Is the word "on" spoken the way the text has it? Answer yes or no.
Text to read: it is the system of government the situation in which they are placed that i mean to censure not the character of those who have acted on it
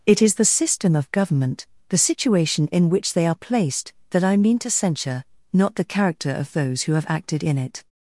no